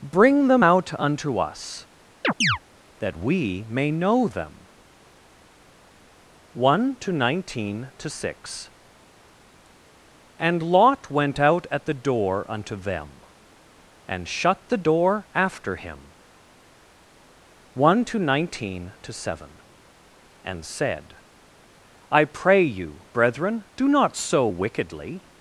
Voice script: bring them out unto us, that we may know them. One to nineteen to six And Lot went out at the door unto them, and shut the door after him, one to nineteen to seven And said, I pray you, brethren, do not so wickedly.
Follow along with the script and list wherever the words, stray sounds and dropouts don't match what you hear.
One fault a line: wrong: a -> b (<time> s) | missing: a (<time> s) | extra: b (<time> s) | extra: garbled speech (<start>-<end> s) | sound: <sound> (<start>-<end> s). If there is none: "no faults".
sound: chirp (2.2-2.6 s)